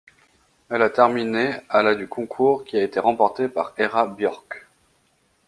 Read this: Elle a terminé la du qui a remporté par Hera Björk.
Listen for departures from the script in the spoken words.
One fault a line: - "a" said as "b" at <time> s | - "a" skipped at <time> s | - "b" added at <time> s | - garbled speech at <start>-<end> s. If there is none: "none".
- "à" added at 1.7 s
- "concours" added at 2.1 s
- "été" added at 2.8 s